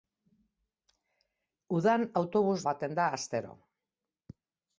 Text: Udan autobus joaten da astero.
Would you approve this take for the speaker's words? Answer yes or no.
yes